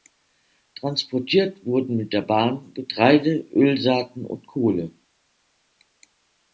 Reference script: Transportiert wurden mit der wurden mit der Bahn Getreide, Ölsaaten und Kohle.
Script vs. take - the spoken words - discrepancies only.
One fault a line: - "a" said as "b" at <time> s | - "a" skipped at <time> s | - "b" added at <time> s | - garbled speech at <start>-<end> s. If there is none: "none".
- "wurden mit der" skipped at 2.2 s